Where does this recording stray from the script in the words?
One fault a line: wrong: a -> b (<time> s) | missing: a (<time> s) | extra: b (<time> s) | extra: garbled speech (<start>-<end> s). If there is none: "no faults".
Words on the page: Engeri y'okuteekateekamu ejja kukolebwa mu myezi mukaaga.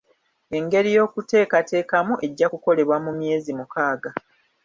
no faults